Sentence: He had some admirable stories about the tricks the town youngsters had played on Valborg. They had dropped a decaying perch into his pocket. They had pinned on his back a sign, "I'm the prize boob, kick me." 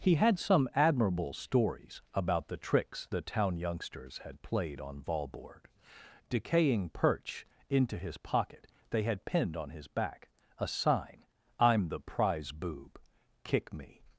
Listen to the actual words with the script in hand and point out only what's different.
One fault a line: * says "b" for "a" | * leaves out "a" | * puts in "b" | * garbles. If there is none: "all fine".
* leaves out "They had dropped a"